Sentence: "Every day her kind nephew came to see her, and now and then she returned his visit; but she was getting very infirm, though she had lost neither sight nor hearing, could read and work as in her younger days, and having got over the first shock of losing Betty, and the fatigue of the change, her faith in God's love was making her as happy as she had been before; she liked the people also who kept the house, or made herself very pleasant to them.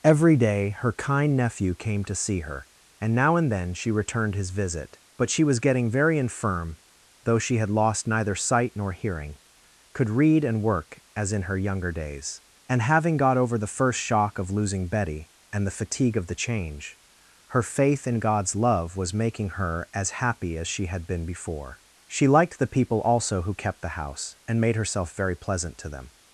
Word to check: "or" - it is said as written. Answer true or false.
false